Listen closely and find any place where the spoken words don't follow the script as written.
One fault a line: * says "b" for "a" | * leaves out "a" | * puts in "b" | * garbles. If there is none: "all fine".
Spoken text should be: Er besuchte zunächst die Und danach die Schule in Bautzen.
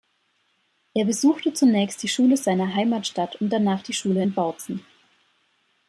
* puts in "Schule seiner Heimatstadt"